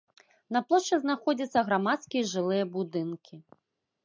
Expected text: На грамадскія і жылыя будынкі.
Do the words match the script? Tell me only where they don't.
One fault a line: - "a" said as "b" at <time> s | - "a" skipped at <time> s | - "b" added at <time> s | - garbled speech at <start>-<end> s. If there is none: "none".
- "плошчы знаходзяцца" added at 0.7 s